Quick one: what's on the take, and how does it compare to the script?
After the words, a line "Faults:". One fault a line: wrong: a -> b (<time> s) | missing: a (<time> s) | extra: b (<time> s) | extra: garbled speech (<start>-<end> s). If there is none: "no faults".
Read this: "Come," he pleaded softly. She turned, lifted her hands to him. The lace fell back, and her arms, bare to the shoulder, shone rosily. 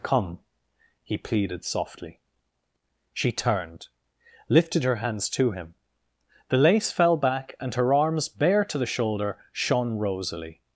"Come," he pleaded softly. She turned, lifted her hands to him. The lace fell back, and her arms, bare to the shoulder, shone rosily.
Faults:
no faults